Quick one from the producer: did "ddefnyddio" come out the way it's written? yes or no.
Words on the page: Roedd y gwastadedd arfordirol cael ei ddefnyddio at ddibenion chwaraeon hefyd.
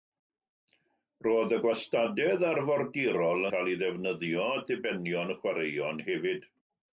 yes